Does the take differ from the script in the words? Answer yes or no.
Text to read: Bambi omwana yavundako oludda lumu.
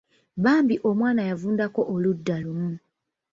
no